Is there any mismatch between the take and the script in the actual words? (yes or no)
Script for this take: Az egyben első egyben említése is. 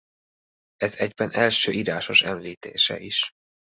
yes